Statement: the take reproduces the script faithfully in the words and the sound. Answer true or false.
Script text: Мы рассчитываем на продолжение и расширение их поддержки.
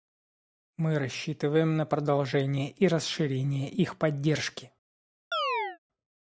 false